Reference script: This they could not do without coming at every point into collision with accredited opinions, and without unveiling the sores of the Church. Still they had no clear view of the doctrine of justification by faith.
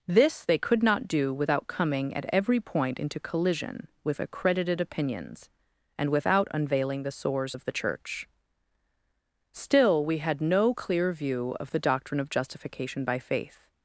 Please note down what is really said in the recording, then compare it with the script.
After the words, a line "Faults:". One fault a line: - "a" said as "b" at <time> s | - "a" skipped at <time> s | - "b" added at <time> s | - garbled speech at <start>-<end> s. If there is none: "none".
This they could not do without coming at every point into collision with accredited opinions, and without unveiling the sores of the Church. Still we had no clear view of the doctrine of justification by faith.
Faults:
- "they" said as "we" at 10.0 s